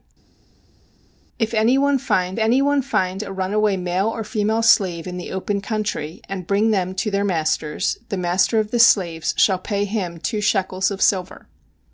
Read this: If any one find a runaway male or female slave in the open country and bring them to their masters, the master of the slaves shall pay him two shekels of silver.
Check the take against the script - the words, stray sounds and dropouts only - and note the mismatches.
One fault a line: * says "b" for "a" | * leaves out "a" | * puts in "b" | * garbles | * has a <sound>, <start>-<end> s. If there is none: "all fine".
* puts in "any one find"